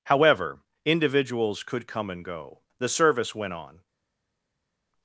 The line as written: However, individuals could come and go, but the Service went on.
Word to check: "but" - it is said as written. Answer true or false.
false